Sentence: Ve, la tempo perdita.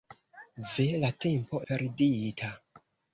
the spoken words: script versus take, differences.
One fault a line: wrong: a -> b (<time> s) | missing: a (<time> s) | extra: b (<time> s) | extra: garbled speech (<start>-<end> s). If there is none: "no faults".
no faults